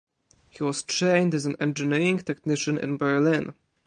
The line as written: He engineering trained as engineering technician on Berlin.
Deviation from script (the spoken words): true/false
true